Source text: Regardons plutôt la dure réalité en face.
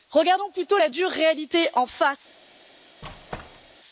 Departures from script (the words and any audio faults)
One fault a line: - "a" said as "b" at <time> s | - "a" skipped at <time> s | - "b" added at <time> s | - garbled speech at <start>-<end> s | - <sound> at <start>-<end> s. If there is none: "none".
- squeak at 3.0-3.8 s